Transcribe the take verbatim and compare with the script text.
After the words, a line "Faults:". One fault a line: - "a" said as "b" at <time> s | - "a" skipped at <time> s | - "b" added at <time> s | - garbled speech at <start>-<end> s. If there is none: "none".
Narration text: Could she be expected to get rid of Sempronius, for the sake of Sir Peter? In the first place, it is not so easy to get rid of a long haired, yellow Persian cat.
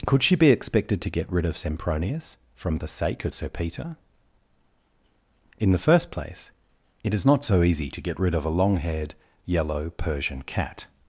Could she be expected to get rid of Sempronius, from the sake of Sir Peter? In the first place, it is not so easy to get rid of a long haired, yellow Persian cat.
Faults:
- "for" said as "from" at 2.5 s